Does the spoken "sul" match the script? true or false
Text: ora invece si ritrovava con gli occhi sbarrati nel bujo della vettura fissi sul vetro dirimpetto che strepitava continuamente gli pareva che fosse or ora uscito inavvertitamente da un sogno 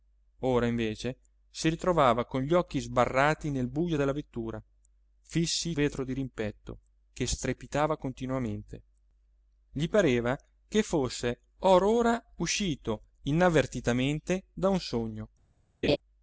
false